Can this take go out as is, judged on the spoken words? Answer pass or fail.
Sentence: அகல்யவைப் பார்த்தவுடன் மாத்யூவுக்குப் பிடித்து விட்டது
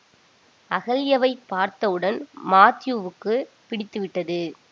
pass